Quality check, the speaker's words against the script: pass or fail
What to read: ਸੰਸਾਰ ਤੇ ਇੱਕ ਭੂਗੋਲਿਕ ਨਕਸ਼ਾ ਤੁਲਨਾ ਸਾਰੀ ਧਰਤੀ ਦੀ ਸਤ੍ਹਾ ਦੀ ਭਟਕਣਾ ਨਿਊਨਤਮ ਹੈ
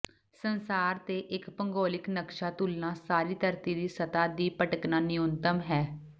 pass